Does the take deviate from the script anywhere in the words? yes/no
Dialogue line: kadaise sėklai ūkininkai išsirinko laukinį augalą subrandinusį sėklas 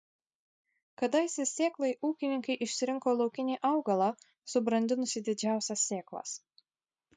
yes